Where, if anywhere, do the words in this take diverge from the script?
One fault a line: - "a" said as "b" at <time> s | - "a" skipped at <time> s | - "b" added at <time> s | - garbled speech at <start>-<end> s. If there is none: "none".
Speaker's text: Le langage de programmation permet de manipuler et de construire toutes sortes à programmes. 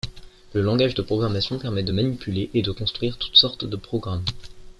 - "à" said as "de" at 3.7 s